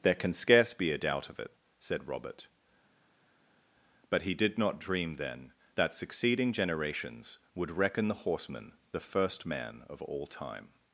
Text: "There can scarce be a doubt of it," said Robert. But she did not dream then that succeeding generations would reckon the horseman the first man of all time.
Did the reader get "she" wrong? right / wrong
wrong